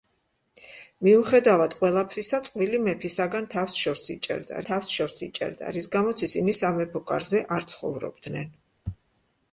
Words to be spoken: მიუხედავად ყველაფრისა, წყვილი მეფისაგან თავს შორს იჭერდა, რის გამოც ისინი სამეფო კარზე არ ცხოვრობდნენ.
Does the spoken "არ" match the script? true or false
true